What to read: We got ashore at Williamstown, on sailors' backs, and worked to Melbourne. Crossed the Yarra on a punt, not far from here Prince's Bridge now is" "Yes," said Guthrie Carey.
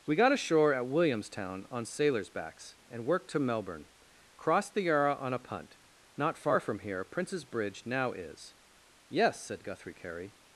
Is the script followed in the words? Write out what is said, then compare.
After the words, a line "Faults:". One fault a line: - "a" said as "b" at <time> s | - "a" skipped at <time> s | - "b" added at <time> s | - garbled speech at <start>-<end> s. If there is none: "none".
We got ashore at Williamstown, on sailors' backs, and worked to Melbourne. Crossed the Yarra on a punt, not far from here Prince's Bridge now is" "Yes," said Guthrie Carey.
Faults:
none